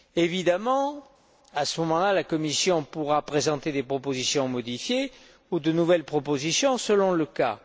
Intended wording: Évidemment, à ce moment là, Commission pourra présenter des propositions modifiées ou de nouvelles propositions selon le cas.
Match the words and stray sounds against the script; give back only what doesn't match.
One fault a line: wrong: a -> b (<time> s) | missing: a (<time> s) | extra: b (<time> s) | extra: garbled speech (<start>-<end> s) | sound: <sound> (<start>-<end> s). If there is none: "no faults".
extra: la (2.1 s)